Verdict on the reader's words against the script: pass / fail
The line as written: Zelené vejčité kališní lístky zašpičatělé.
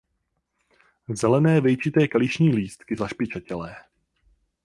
pass